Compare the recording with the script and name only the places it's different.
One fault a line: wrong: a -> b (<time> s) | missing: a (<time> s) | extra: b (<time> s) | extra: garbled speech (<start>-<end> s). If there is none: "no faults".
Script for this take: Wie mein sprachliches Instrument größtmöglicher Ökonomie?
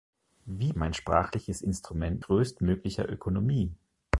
no faults